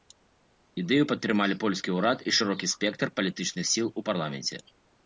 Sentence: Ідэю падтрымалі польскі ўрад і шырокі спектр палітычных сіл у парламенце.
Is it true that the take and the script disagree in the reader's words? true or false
false